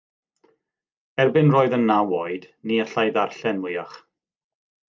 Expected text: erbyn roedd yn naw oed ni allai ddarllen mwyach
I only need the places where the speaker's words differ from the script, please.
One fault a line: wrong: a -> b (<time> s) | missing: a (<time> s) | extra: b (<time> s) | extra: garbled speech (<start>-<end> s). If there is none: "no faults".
no faults